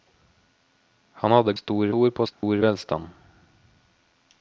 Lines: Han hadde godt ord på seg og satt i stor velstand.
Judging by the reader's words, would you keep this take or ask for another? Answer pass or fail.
fail